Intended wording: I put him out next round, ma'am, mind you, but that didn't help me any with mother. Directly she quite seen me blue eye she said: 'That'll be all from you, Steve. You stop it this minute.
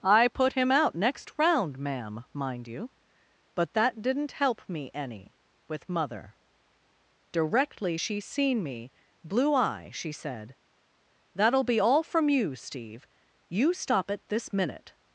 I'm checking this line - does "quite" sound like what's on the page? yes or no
no